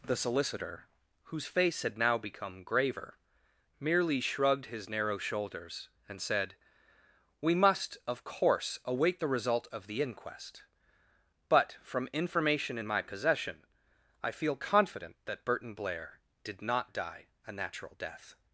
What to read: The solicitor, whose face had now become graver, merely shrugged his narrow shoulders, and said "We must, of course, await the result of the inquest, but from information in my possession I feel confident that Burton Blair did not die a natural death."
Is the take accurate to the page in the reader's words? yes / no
yes